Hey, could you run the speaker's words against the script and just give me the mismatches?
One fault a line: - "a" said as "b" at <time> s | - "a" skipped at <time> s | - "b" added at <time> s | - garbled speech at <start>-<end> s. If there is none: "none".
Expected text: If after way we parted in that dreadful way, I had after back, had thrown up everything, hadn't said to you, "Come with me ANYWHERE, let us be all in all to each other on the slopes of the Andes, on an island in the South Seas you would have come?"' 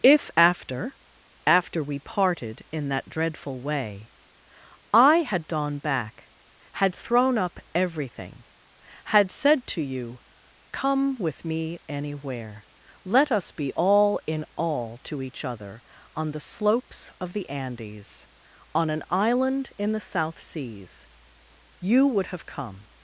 - "way" said as "after" at 1.4 s
- "after" said as "gone" at 5.5 s
- "hadn't" said as "had" at 9.0 s